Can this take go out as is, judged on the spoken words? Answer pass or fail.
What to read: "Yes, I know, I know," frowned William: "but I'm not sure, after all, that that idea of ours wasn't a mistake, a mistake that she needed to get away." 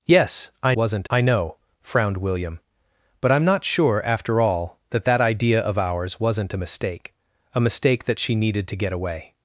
fail